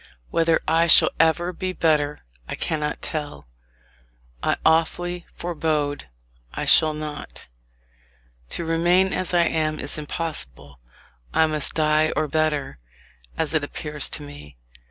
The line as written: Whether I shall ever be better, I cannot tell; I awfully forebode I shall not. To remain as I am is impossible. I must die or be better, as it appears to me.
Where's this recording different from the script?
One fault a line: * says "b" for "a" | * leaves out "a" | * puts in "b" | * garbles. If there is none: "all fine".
* leaves out "be"